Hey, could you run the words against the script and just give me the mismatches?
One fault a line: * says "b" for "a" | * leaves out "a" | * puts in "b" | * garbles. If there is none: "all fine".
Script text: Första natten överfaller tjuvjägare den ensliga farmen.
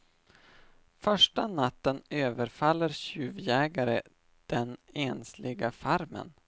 all fine